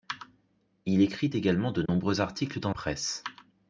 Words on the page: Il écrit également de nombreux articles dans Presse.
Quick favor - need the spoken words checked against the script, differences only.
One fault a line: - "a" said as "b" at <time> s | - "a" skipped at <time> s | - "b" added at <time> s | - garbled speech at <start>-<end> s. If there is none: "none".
none